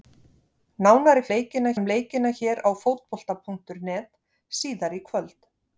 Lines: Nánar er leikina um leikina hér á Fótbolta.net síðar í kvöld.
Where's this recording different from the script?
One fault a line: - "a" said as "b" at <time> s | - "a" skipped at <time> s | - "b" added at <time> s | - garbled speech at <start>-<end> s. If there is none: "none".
none